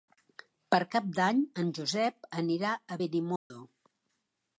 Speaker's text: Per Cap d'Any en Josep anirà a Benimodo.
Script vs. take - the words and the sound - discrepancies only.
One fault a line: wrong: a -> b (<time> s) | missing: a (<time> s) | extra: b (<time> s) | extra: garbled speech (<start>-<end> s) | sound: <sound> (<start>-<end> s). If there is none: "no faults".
sound: dropout (3.4-3.5 s)